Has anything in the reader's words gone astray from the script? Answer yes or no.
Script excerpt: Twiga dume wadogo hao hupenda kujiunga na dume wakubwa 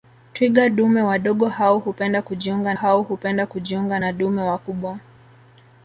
yes